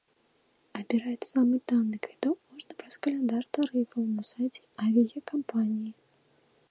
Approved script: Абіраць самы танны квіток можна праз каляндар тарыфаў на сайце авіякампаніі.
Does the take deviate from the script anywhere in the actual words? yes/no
no